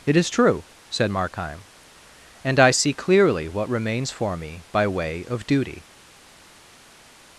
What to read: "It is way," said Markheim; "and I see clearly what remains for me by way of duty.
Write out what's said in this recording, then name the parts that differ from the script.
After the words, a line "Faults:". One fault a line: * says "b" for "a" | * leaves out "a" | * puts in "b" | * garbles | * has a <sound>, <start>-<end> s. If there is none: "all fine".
"It is true," said Markheim; "and I see clearly what remains for me by way of duty.
Faults:
* says "true" for "way"